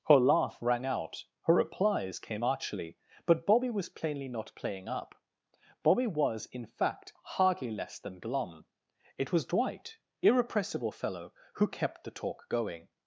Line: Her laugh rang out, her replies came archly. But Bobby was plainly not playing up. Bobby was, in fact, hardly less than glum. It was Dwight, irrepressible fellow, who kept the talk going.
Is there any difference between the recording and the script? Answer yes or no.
no